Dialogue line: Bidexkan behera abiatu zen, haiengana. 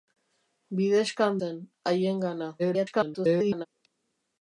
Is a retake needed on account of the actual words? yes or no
yes